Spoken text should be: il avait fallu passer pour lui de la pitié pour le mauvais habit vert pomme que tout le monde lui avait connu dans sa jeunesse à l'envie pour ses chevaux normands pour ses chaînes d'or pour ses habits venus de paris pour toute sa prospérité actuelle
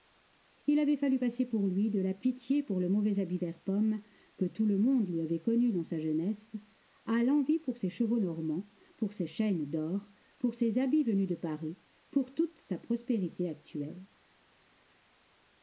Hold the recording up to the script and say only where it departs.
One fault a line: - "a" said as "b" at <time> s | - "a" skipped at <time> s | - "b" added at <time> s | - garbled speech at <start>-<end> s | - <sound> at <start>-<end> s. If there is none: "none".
none